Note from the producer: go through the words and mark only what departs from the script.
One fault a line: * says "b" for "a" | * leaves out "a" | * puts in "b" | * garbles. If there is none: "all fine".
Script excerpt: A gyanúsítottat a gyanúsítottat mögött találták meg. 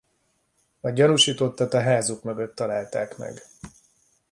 * says "házuk" for "gyanúsítottat"